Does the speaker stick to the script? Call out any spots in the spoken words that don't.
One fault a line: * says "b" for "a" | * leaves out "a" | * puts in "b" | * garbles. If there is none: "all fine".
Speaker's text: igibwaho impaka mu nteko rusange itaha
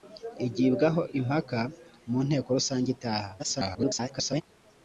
* garbles